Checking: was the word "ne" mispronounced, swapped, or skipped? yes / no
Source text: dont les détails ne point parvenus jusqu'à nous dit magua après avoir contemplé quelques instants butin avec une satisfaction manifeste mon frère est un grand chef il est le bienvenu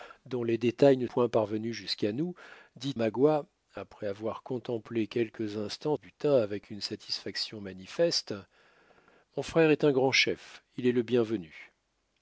no